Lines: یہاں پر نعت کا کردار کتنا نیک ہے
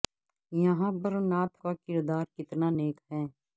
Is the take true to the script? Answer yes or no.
yes